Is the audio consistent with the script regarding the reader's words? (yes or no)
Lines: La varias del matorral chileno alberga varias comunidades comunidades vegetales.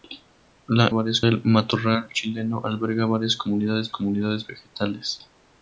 yes